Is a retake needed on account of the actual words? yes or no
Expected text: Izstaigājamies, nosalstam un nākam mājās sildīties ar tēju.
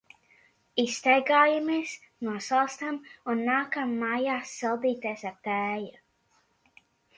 no